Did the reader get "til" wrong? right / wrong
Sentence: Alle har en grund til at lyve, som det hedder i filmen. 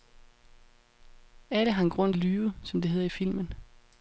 wrong